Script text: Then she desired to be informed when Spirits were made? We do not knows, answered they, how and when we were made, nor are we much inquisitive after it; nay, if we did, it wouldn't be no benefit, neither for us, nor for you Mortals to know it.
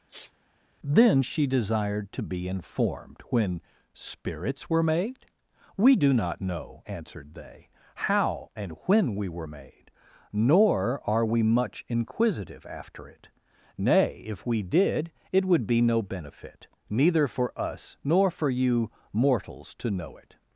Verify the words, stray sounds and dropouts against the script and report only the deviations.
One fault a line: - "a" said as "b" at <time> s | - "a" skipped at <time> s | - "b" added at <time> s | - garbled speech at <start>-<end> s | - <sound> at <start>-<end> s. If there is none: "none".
- sniff at 0.1-0.3 s
- "knows" said as "know" at 6.4 s
- "wouldn't" said as "would" at 15.4 s